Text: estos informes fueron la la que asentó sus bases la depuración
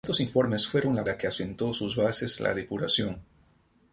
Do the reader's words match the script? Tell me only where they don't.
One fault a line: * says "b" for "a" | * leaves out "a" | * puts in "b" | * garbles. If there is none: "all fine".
all fine